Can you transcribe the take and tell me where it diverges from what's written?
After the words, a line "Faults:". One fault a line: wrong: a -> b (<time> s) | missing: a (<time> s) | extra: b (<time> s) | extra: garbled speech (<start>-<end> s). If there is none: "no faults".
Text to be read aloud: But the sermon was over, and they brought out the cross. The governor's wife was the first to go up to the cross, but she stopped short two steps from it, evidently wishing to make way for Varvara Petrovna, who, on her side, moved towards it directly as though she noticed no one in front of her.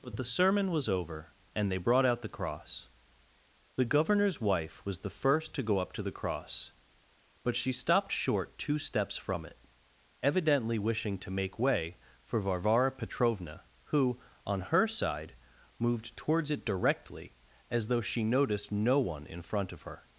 But the sermon was over, and they brought out the cross. The governor's wife was the first to go up to the cross, but she stopped short two steps from it, evidently wishing to make way for Varvara Petrovna, who, on her side, moved towards it directly as though she noticed no one in front of her.
Faults:
no faults